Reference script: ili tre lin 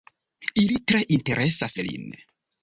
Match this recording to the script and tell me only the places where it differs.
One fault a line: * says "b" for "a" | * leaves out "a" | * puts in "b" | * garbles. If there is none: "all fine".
* puts in "interesas"